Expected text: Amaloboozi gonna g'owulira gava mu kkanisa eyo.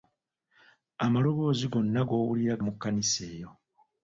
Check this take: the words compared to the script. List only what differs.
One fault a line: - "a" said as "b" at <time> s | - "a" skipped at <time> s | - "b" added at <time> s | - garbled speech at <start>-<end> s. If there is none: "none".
- "gava" skipped at 2.5 s